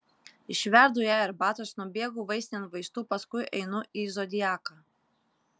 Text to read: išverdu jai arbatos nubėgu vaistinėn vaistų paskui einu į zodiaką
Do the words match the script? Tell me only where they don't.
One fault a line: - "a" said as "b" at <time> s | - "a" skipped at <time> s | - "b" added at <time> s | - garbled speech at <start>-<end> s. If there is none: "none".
none